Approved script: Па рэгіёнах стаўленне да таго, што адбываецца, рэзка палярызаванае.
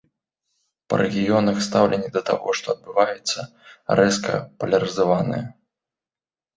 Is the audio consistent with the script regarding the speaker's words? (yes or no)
yes